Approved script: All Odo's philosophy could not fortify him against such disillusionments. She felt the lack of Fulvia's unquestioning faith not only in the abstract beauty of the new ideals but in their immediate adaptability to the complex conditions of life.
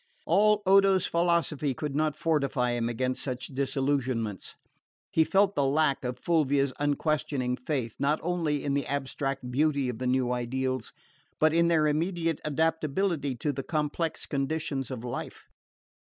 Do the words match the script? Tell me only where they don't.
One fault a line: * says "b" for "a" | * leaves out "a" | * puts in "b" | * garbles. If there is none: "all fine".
* says "He" for "She"